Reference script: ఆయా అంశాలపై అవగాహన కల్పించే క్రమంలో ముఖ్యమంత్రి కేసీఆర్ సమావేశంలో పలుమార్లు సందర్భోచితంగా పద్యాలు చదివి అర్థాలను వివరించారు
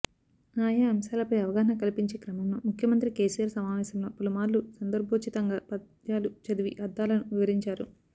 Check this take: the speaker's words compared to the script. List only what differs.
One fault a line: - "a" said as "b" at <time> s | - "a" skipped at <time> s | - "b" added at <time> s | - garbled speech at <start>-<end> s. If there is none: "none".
none